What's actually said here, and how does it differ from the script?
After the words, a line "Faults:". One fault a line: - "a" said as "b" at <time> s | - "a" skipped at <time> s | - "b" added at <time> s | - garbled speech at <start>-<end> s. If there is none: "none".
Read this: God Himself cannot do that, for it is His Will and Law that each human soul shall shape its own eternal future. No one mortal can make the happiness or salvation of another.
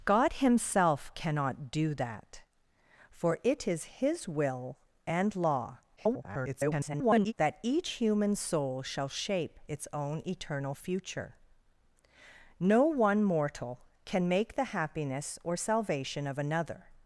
God Himself cannot do that, for it is His Will and Law [garbled] that each human soul shall shape its own eternal future. No one mortal can make the happiness or salvation of another.
Faults:
- garbled speech at 6.0-7.3 s